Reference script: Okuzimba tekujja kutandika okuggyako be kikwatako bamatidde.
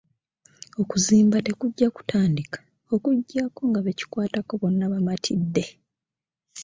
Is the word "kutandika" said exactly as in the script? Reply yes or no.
yes